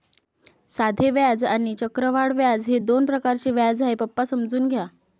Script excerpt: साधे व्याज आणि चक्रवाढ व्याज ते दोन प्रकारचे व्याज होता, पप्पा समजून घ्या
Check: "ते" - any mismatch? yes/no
yes